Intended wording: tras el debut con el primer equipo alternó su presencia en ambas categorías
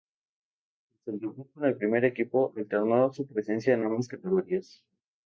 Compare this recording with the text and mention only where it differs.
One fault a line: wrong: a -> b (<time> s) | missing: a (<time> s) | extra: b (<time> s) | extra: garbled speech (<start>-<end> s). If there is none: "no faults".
no faults